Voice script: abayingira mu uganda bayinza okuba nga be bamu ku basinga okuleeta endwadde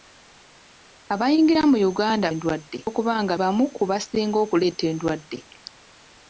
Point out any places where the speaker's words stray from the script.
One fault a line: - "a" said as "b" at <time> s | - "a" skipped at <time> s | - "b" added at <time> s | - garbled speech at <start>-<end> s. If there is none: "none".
- "bayinza" said as "endwadde" at 2.3 s
- "be" skipped at 3.3 s